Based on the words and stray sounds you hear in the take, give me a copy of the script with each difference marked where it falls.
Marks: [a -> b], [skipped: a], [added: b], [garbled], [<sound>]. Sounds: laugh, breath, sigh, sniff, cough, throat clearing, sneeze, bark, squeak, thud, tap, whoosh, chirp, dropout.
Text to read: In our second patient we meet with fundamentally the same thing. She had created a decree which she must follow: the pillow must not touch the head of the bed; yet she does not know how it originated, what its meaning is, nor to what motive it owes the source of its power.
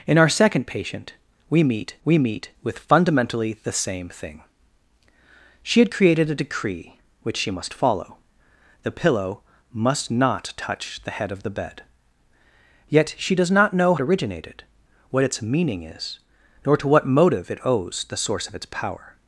In our second patient we meet [added: we meet] with fundamentally the same thing. She had created a decree which she must follow: the pillow must not touch the head of the bed; yet she does not know [skipped: how] it originated, what its meaning is, nor to what motive it owes the source of its power.